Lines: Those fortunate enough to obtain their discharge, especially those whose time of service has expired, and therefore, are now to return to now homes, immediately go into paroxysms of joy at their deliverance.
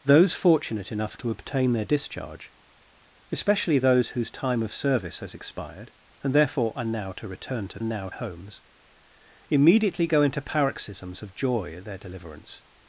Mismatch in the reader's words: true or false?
false